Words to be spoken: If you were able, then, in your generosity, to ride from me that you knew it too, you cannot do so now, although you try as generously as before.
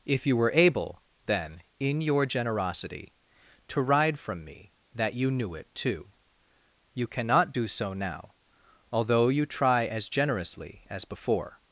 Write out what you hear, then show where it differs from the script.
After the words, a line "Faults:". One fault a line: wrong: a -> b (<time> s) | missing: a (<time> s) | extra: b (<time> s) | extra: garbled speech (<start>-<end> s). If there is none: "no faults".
If you were able, then, in your generosity, to ride from me that you knew it too, you cannot do so now, although you try as generously as before.
Faults:
no faults